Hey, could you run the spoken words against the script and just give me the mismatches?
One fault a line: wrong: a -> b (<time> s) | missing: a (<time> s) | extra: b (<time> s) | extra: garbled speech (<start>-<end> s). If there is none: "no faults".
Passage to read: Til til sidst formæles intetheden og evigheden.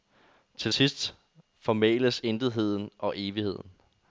missing: til (0.7 s)